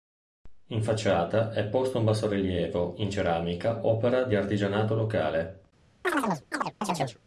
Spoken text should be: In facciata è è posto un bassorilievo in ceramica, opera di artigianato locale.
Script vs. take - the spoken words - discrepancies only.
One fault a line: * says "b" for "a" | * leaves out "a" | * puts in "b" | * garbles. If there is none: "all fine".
* leaves out "è"